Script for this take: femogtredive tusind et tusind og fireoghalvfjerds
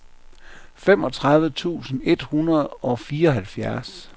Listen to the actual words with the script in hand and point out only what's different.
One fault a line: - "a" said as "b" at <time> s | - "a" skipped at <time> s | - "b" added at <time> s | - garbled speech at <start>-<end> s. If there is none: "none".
- "tusind" said as "hundrede" at 2.2 s